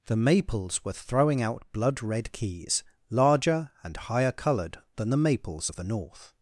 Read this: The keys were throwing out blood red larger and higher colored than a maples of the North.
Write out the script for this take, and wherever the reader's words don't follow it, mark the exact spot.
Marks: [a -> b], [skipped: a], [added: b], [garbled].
The [keys -> maples] were throwing out blood red [added: keys] larger and higher colored than [a -> the] maples of the North.